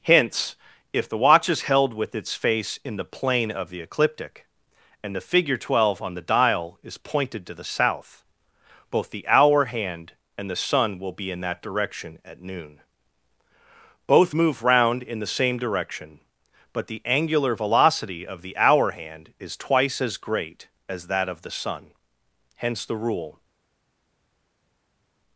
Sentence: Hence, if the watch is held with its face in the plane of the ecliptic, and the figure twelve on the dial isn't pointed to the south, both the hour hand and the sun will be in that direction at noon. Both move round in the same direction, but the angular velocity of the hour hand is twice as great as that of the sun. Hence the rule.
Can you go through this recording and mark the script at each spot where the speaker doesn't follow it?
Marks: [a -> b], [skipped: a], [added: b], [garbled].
Hence, if the watch is held with its face in the plane of the ecliptic, and the figure twelve on the dial [isn't -> is] pointed to the south, both the hour hand and the sun will be in that direction at noon. Both move round in the same direction, but the angular velocity of the hour hand is twice as great as that of the sun. Hence the rule.